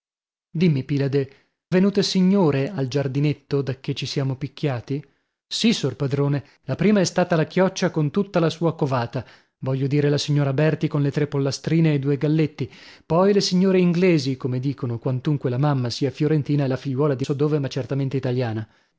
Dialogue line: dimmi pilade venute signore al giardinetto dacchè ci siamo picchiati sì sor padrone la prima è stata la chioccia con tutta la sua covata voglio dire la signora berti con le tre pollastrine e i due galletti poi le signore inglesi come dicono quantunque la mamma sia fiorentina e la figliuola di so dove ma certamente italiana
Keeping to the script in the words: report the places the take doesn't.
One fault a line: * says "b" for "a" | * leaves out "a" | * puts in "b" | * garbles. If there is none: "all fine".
all fine